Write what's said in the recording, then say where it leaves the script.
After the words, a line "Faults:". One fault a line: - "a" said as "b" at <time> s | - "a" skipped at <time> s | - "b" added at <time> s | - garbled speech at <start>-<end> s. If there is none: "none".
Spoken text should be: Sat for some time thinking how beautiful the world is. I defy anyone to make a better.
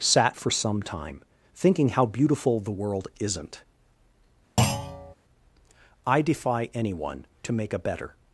Sat for some time thinking how beautiful the world isn't. I defy anyone to make a better.
Faults:
- "is" said as "isn't" at 3.2 s